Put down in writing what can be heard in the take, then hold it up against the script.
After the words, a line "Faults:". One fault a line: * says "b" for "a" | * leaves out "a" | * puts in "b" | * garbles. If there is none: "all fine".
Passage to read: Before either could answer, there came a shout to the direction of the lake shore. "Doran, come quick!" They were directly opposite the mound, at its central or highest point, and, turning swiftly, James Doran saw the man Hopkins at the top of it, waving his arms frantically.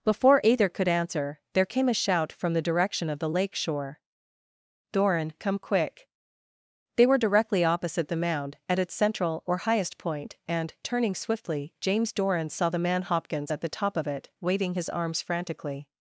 Before either could answer, there came a shout from the direction of the lake shore. "Doran, come quick!" They were directly opposite the mound, at its central or highest point, and, turning swiftly, James Doran saw the man Hopkins at the top of it, waving his arms frantically.
Faults:
* says "from" for "to"